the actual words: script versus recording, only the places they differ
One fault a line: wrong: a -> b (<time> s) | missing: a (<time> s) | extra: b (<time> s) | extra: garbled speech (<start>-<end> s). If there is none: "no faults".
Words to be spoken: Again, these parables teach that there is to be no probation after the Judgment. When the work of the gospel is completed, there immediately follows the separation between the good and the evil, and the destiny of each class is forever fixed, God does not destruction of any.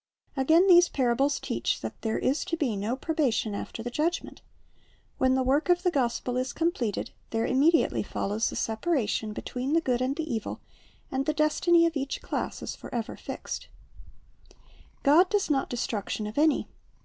no faults